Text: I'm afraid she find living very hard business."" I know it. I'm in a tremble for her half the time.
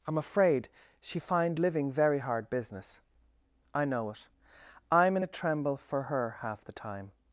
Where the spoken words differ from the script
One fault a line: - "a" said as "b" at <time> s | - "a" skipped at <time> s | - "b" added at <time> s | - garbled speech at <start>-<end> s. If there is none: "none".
none